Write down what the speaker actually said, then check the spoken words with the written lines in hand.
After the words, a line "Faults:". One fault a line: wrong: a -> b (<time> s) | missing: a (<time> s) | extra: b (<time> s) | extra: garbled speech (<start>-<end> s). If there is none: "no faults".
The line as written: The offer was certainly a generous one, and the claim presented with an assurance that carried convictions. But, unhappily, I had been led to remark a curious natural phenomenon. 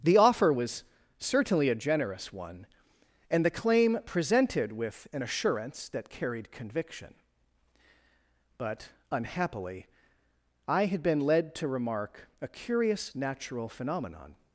The offer was certainly a generous one, and the claim presented with an assurance that carried conviction. But, unhappily, I had been led to remark a curious natural phenomenon.
Faults:
wrong: convictions -> conviction (6.5 s)